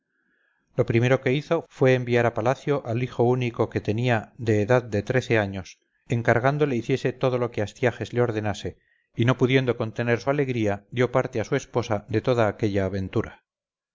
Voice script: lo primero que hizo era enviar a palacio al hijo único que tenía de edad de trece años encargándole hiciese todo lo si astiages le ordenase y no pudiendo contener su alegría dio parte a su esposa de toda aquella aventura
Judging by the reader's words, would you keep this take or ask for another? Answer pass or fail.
fail